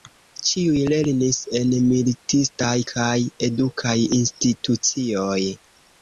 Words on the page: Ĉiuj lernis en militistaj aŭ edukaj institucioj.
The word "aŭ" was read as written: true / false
false